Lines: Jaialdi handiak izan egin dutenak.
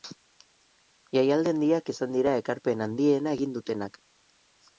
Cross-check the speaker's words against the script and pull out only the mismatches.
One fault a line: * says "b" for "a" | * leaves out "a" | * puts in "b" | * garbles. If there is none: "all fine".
* puts in "dira ekarpen handiena"